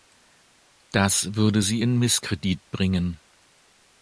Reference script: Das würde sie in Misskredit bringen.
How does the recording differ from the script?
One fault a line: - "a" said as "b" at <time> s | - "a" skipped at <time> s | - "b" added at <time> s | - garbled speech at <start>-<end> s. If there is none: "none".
none